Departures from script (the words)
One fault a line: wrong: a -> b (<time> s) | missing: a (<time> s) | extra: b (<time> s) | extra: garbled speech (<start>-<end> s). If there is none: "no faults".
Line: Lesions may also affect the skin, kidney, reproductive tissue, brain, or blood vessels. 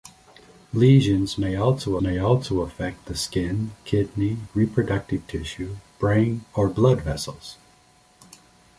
extra: may also (2.0 s)